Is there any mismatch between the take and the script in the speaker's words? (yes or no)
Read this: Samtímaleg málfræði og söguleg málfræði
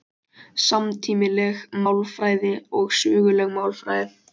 no